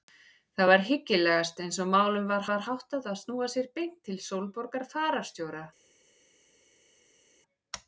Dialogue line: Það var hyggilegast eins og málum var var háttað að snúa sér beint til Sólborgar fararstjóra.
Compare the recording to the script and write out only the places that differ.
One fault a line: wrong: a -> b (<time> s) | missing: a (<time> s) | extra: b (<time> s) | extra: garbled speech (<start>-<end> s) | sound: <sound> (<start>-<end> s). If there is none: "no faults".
no faults